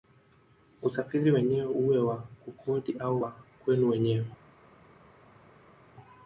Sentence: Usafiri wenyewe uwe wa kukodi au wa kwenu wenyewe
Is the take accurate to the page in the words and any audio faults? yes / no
yes